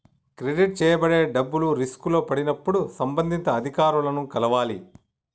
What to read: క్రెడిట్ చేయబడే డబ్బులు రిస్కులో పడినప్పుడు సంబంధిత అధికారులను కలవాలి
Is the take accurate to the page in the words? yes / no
yes